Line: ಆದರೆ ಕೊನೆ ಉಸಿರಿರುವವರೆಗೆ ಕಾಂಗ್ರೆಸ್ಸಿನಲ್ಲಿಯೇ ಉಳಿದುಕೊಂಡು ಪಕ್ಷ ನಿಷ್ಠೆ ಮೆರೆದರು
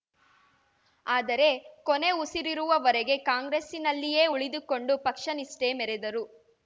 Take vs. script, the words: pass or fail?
pass